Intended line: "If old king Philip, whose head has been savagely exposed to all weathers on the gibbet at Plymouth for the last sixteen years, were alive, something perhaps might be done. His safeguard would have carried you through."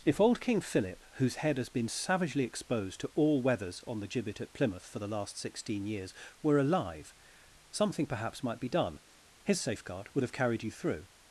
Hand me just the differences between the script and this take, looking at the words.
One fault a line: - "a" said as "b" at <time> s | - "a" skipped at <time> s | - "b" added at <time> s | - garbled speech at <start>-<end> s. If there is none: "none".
none